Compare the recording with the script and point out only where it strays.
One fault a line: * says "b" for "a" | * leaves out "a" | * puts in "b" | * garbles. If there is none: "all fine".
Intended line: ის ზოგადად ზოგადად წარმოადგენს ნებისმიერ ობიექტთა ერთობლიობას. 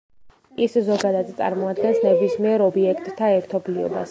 * leaves out "ზოგადად"